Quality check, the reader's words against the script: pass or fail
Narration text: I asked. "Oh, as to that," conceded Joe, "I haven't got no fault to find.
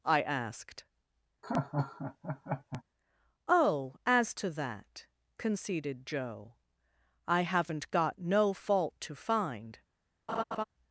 pass